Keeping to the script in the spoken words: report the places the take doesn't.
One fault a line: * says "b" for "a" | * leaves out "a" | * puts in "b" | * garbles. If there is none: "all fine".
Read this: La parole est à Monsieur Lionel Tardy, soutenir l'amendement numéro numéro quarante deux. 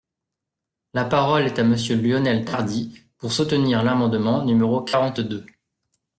* puts in "pour"
* leaves out "numéro"